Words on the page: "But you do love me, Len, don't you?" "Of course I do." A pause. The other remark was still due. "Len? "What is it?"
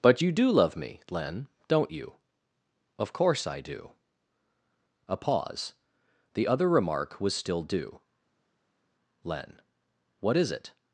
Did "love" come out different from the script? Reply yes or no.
no